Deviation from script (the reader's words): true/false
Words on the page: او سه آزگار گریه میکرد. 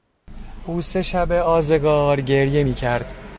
true